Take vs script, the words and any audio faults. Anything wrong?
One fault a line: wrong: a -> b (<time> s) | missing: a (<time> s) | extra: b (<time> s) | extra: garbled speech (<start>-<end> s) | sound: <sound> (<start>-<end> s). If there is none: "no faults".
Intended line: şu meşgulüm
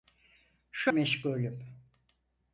no faults